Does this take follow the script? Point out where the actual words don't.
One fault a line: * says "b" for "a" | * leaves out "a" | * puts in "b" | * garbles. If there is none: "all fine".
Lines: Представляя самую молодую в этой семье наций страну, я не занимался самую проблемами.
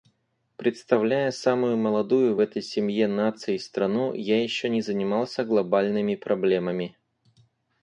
* puts in "еще"
* says "глобальными" for "самую"